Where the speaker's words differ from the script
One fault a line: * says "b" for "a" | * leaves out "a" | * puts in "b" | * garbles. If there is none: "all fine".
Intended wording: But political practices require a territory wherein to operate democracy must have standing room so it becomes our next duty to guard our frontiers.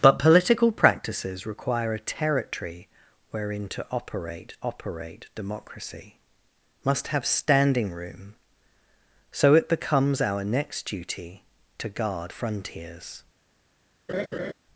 * puts in "operate"
* leaves out "our"